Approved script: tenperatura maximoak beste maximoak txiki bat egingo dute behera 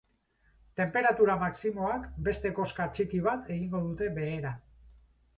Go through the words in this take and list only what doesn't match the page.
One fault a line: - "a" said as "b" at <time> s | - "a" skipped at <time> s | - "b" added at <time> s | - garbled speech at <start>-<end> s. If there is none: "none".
- "maximoak" said as "koska" at 2.6 s